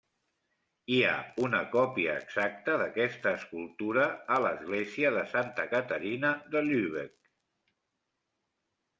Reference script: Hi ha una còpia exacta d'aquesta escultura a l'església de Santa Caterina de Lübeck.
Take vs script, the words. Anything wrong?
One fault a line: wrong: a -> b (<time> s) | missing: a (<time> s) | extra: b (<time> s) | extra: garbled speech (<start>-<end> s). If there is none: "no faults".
no faults